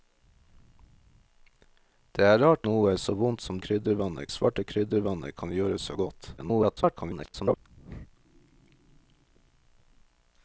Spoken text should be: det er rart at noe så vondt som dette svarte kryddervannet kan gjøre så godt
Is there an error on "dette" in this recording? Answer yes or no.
yes